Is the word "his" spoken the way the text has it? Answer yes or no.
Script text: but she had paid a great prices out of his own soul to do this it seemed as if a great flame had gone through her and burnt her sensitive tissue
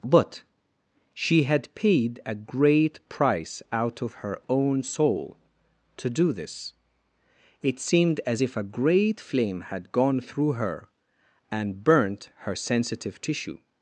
no